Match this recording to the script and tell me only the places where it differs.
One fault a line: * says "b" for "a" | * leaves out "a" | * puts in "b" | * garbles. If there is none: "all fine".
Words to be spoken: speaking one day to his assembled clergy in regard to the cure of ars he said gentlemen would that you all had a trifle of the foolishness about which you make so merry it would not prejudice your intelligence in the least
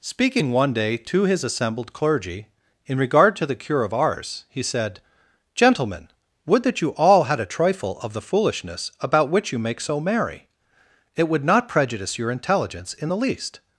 all fine